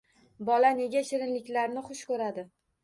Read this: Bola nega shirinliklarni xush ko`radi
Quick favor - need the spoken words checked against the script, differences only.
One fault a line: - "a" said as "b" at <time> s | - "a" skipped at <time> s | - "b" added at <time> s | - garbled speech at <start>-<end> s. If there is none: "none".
none